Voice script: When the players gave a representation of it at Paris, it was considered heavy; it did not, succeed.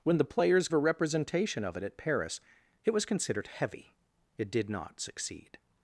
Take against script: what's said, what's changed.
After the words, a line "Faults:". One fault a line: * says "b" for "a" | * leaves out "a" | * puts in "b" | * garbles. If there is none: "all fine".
When the players a representation of it at Paris, it was considered heavy; it did not, succeed.
Faults:
* leaves out "gave"